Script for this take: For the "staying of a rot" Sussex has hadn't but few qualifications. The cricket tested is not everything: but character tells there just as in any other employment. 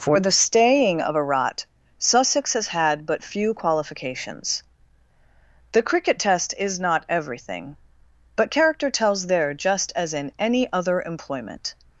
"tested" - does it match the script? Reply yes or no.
no